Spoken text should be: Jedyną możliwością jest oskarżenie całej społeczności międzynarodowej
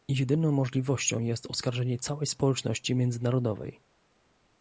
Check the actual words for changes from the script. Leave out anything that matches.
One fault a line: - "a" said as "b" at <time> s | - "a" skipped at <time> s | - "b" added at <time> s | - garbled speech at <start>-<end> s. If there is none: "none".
none